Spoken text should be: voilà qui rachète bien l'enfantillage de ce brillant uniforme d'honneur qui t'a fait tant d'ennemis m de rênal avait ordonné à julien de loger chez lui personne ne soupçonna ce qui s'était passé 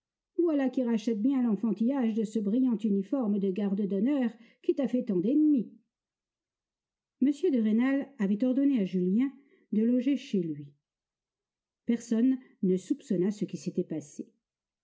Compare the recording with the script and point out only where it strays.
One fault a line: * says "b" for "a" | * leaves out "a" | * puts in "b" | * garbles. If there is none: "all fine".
* puts in "de garde"